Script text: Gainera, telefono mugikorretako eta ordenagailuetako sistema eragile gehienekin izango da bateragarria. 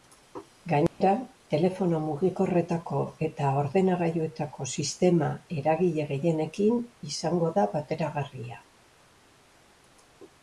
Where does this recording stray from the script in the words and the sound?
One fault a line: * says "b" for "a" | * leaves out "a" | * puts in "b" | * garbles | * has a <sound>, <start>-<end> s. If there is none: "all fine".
* has a dropout, 0.9-1.0 s